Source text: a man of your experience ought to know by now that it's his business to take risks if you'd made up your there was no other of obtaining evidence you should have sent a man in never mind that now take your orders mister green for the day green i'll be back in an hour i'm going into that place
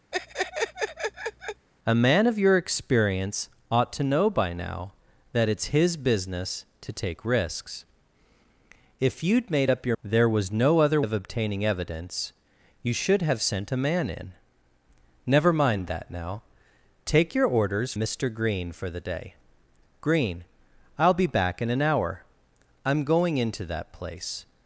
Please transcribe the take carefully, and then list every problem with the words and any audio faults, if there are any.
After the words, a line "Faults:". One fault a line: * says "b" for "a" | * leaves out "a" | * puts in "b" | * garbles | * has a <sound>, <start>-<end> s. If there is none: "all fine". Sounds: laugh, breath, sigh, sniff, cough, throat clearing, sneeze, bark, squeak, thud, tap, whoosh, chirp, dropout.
a man of your experience ought to know by now that it's his business to take risks if you'd made up your there was no other of obtaining evidence you should have sent a man in never mind that now take your orders mister green for the day green i'll be back in an hour i'm going into that place
Faults:
* has a laugh, 0.1-1.7 s